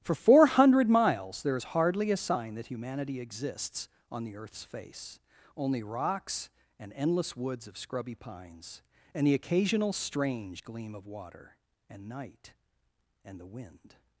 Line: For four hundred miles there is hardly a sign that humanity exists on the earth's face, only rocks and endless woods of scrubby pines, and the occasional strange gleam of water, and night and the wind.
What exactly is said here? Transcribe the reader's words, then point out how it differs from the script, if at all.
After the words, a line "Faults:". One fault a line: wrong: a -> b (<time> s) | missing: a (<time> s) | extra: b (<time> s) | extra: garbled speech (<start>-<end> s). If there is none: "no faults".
For four hundred miles there is hardly a sign that humanity exists on the earth's face, only rocks and endless woods of scrubby pines, and the occasional strange gleam of water, and night and the wind.
Faults:
no faults